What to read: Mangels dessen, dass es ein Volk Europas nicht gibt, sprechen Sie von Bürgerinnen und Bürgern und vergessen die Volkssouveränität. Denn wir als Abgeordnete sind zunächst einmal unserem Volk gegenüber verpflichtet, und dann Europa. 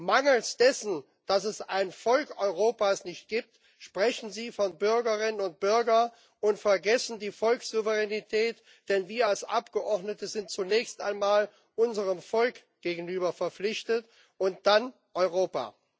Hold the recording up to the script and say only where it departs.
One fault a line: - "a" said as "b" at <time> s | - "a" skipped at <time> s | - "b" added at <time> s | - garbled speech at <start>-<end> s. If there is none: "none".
none